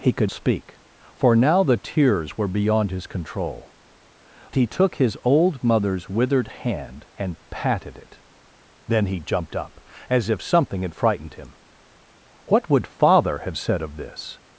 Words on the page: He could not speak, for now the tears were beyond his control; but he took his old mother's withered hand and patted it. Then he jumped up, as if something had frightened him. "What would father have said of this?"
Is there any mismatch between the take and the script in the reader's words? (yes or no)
yes